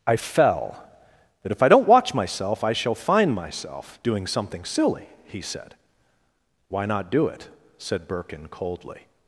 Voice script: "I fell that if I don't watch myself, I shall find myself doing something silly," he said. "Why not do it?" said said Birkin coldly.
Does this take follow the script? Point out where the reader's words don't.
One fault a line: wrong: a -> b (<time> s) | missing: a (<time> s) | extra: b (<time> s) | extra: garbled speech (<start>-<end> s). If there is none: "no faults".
missing: said (8.1 s)